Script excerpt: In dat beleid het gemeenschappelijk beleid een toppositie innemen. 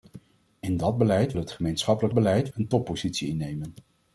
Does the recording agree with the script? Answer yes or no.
yes